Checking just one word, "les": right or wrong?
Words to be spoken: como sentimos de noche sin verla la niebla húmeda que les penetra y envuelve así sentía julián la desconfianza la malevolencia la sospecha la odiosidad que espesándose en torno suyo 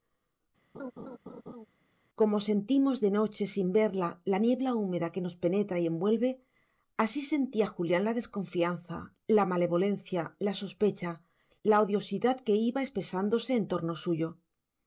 wrong